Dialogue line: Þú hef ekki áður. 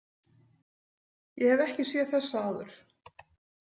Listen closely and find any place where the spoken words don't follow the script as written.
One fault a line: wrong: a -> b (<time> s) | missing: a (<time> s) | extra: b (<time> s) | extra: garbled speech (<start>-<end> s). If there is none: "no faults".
wrong: Þú -> Ég (1.4 s)
extra: séð þessa (1.9 s)